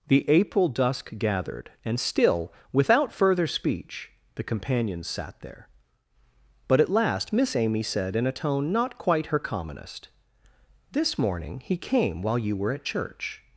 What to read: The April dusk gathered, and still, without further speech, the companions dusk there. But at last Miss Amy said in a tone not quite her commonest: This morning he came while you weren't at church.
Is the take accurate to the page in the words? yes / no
no